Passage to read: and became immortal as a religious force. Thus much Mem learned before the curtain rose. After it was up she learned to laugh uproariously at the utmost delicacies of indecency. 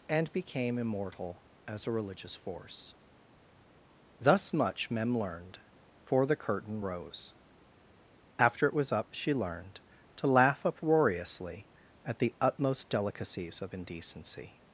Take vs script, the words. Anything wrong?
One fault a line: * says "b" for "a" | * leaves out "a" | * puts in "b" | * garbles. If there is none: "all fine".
* says "for" for "before"